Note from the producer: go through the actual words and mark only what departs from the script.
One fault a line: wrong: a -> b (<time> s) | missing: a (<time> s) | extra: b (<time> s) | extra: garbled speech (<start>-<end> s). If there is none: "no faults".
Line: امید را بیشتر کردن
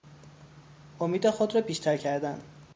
extra: خود (1.3 s)